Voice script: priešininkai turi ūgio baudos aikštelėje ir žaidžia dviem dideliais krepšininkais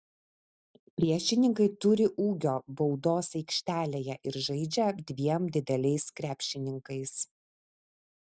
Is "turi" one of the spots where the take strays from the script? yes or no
no